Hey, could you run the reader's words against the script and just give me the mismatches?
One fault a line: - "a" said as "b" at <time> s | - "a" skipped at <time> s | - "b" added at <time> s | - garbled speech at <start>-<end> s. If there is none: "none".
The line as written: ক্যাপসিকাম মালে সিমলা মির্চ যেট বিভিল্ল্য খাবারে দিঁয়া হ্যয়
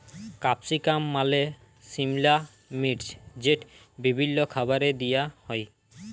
none